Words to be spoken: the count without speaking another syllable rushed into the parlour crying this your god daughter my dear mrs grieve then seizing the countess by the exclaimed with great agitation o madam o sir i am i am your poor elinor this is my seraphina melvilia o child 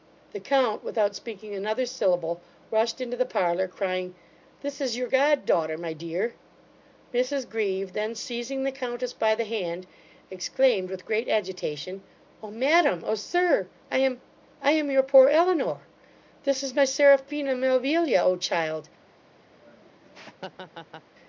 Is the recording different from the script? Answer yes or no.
yes